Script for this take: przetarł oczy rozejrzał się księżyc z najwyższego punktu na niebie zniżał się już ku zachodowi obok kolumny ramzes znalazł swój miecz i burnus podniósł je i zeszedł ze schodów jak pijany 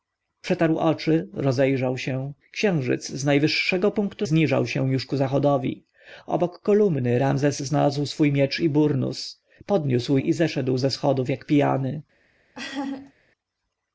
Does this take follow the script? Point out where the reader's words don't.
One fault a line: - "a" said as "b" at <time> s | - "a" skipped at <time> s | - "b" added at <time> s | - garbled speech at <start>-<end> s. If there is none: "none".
- "na niebie" skipped at 4.3 s
- "je" skipped at 10.2 s